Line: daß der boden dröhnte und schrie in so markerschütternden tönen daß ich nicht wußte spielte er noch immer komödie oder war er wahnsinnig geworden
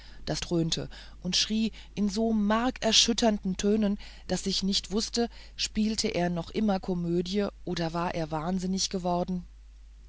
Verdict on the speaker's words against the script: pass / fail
fail